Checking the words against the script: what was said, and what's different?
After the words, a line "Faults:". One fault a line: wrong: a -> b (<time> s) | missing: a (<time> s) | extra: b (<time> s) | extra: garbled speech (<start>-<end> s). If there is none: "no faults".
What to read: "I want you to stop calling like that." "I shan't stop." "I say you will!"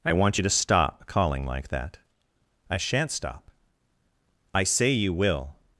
"I want you to stop calling like that." "I shan't stop." "I say you will!"
Faults:
no faults